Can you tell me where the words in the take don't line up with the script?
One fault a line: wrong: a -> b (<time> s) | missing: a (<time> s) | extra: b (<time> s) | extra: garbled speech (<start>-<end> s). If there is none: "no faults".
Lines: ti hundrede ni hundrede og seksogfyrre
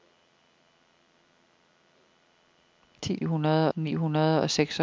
no faults